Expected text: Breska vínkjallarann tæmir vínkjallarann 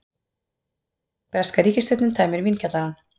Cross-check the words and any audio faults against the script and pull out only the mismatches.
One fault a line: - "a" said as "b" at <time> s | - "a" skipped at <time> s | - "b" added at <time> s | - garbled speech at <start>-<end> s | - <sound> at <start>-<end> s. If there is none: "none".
- "vínkjallarann" said as "ríkisstjórnin" at 1.7 s